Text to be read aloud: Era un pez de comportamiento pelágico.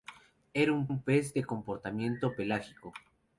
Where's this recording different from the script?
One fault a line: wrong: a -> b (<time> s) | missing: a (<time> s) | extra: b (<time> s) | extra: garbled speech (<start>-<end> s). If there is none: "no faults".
extra: un (0.8 s)